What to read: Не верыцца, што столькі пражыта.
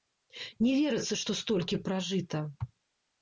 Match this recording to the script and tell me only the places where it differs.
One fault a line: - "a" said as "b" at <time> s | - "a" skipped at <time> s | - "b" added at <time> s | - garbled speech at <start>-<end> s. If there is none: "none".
none